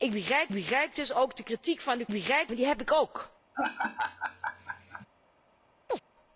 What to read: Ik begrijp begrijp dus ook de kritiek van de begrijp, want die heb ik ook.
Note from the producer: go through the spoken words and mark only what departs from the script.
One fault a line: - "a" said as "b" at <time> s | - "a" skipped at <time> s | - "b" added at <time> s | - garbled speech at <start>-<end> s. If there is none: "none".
none